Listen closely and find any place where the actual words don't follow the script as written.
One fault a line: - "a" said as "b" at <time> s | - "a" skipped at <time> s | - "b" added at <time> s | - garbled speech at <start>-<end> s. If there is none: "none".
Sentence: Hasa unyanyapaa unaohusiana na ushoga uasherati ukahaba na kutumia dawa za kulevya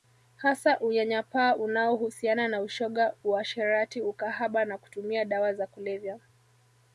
none